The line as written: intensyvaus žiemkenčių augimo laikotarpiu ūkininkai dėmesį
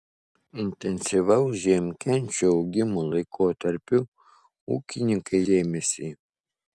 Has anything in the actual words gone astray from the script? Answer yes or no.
no